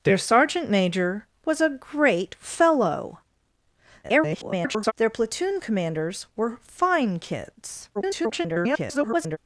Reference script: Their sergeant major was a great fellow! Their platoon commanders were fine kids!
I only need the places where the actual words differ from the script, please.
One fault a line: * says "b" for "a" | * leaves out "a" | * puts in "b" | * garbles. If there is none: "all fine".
* garbles
* garbles